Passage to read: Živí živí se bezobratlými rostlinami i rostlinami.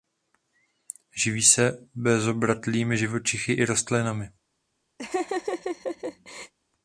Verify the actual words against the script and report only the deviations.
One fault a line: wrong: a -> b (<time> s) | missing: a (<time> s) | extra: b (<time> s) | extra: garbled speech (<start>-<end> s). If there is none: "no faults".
missing: živí (1.4 s)
wrong: rostlinami -> živočichy (3.0 s)